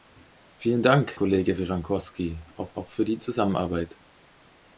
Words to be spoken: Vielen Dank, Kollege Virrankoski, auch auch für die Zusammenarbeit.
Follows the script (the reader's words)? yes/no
yes